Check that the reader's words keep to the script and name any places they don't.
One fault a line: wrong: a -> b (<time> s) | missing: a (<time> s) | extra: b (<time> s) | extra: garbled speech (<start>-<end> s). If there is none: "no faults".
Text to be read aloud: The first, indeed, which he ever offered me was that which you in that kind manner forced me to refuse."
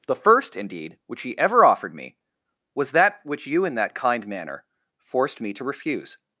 no faults